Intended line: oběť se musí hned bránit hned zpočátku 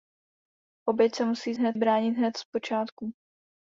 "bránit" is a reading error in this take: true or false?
false